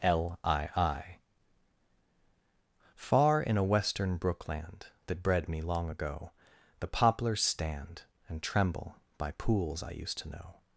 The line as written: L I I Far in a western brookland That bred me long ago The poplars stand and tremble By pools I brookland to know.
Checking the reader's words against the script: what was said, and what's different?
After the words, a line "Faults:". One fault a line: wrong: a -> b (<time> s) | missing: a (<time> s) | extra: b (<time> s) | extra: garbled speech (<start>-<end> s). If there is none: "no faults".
L I I Far in a western brookland That bred me long ago The poplars stand and tremble By pools I used to know.
Faults:
wrong: brookland -> used (9.9 s)